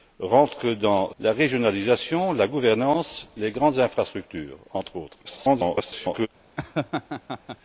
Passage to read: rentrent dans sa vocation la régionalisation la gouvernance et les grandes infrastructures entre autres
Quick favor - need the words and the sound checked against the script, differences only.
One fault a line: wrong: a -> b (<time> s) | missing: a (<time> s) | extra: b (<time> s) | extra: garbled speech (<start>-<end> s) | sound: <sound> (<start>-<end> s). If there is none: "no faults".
missing: sa vocation (1.1 s)
missing: et (3.3 s)
extra: garbled speech (5.2-6.3 s)
sound: laugh (6.6-7.6 s)